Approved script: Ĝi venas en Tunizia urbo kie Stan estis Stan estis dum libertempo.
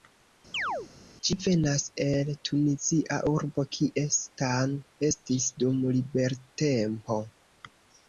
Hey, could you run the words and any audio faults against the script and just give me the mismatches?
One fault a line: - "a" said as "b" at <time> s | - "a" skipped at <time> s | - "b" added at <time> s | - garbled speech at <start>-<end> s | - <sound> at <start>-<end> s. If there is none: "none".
- chirp at 0.5-0.9 s
- "en" said as "el" at 2.0 s
- "Stan estis" skipped at 5.5 s